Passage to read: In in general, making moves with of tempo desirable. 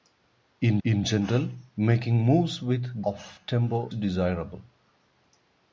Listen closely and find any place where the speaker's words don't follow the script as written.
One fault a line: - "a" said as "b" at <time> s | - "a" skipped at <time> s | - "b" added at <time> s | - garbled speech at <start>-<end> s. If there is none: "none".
none